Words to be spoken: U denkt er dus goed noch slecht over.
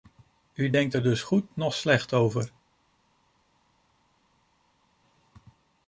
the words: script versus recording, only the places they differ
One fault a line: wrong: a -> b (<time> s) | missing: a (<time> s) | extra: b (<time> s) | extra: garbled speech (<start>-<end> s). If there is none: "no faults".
no faults